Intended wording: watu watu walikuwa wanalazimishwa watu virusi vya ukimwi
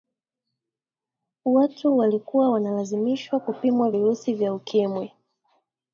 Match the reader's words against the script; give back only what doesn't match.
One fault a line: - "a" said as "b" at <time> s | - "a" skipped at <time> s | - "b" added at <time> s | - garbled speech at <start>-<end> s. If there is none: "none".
- "watu" skipped at 2.0 s
- "watu" said as "kupimwa" at 3.4 s